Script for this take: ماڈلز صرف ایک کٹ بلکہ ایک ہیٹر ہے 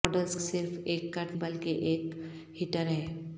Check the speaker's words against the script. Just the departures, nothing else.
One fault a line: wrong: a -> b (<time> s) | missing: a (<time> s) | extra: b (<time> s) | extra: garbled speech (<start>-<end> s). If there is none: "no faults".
no faults